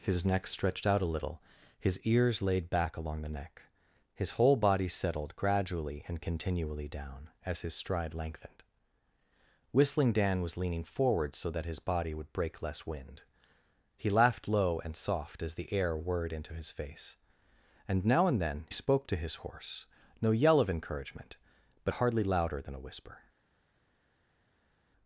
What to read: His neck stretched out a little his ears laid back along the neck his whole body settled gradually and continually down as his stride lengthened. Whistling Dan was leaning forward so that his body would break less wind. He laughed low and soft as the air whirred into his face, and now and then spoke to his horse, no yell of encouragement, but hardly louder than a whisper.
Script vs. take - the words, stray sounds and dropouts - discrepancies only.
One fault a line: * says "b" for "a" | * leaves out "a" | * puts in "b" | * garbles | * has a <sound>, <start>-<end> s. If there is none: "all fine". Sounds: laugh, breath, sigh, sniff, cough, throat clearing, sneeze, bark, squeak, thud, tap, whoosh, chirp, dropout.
all fine